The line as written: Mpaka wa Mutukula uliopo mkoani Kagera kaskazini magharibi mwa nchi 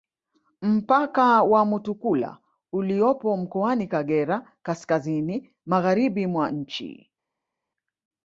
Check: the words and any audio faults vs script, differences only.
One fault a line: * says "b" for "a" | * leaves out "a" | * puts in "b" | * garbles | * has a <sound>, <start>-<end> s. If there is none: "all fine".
all fine